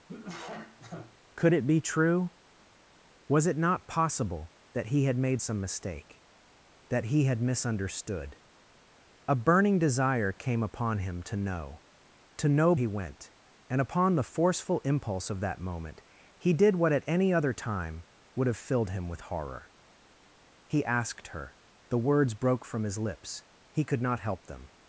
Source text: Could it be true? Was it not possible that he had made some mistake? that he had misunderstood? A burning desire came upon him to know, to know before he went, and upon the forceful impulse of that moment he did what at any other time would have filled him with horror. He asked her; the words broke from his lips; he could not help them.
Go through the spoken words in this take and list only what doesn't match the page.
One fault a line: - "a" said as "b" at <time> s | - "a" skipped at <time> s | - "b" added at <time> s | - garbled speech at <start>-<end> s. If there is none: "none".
- "before" skipped at 12.7 s